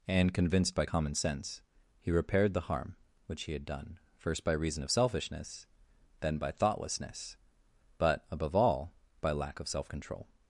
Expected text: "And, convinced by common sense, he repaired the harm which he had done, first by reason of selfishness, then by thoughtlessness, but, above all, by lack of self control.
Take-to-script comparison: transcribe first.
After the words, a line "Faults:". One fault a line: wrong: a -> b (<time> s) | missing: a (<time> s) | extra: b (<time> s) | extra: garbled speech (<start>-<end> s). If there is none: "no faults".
"And, convinced by common sense, he repaired the harm which he had done, first by reason of selfishness, then by thoughtlessness, but, above all, by lack of self control.
Faults:
no faults